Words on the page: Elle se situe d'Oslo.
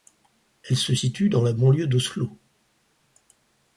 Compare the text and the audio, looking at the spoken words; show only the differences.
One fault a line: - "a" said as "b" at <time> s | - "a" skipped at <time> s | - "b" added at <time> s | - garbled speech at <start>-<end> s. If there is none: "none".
- "dans la banlieue" added at 1.3 s